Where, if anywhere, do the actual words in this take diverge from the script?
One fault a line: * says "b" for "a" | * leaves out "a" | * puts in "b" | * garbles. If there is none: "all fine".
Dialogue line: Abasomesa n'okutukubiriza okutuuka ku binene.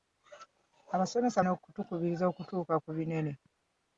all fine